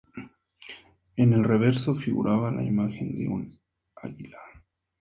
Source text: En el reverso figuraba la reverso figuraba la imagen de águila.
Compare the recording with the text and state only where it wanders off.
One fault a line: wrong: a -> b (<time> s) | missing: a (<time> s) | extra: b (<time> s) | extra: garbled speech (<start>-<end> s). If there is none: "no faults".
missing: reverso figuraba la (2.6 s)
extra: un (3.3 s)